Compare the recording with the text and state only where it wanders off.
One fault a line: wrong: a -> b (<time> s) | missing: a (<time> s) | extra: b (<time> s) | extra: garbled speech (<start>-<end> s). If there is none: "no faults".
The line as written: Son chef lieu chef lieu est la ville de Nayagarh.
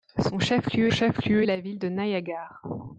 no faults